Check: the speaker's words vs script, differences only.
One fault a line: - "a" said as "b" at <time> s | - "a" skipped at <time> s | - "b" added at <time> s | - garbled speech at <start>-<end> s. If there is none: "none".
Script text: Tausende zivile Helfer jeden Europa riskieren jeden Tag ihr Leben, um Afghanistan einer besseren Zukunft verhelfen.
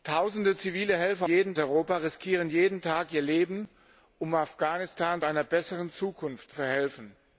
none